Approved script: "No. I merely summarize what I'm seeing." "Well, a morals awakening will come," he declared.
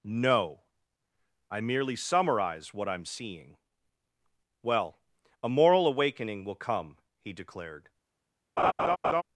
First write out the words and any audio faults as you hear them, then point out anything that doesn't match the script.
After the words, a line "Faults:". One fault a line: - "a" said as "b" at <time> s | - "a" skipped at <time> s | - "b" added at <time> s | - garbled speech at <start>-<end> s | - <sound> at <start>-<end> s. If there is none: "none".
"No. I merely summarize what I'm seeing." "Well, a moral awakening will come," he declared.
Faults:
- "morals" said as "moral" at 5.5 s
- laugh at 8.6-9.2 s